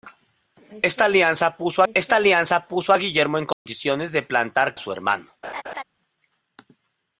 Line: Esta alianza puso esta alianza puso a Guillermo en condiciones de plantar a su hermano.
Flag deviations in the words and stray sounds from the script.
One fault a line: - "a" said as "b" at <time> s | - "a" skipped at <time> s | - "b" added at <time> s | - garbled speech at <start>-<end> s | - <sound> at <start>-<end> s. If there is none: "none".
- dropout at 3.5-3.7 s
- laugh at 5.4-5.8 s